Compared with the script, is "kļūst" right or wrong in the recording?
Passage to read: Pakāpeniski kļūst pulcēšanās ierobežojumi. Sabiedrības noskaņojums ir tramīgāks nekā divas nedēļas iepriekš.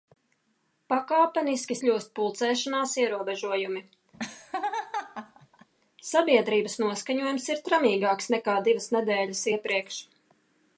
right